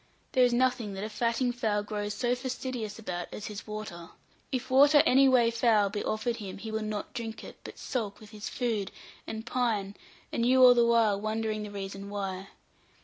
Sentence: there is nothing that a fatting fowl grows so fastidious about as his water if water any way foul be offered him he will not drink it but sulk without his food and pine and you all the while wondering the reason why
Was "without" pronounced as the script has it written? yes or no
no